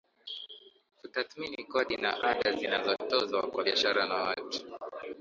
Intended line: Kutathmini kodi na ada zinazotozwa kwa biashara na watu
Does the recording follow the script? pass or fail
pass